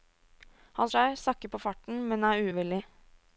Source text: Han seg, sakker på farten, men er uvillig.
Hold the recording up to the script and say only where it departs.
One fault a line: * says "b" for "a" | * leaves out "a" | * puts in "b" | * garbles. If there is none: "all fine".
all fine